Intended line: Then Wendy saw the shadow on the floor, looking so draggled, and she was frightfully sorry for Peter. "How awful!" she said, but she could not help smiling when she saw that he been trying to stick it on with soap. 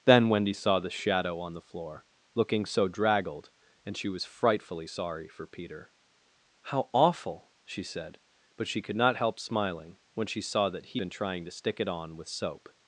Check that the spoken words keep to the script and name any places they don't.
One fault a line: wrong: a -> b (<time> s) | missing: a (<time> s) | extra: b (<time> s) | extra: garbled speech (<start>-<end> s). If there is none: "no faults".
no faults